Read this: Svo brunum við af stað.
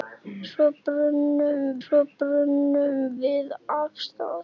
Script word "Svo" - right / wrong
right